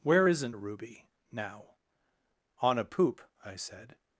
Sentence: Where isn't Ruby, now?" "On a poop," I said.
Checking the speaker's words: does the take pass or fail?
pass